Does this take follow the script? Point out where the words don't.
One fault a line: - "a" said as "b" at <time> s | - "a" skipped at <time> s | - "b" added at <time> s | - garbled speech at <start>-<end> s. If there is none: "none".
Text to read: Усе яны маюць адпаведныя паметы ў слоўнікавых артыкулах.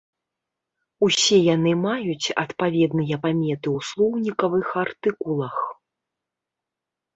none